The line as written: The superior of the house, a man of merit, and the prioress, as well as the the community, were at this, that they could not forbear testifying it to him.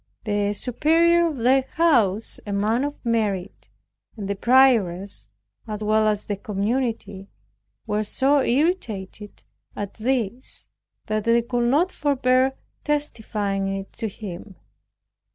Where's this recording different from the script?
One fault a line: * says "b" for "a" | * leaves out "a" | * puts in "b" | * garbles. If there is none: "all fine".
* leaves out "the"
* puts in "so irritated"